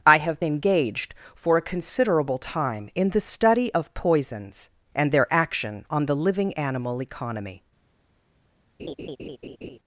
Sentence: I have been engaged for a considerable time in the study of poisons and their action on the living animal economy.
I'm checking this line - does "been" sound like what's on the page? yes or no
no